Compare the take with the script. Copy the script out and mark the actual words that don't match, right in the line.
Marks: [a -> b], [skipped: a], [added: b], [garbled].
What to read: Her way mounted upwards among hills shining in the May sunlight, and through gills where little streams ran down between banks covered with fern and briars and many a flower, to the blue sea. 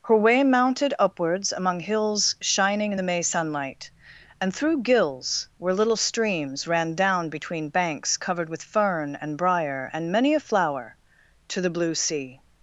Her way mounted upwards among hills shining in the May sunlight, and through gills where little streams ran down between banks covered with fern and [briars -> briar] and many a flower, to the blue sea.